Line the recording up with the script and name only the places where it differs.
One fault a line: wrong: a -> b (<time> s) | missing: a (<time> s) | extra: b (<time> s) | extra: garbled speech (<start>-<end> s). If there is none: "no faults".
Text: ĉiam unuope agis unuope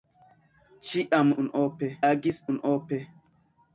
no faults